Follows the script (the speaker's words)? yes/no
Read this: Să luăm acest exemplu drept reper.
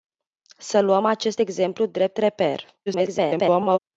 no